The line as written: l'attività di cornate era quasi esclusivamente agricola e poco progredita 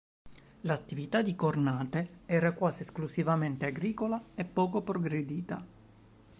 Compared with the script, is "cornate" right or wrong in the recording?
right